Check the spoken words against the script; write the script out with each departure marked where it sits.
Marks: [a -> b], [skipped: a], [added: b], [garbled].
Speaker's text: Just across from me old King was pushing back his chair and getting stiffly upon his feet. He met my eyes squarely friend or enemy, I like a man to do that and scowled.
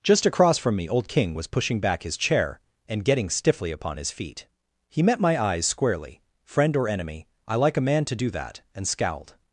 Just across from me old King was pushing back his chair and getting stiffly upon his feet. He met my eyes squarely friend or enemy, I like a man to do that and scowled.